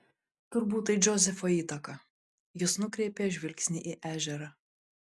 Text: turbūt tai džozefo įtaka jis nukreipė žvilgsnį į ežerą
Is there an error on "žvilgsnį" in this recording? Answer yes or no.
no